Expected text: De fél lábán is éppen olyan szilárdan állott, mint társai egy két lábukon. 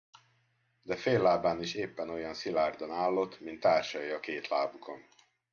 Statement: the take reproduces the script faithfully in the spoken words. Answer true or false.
false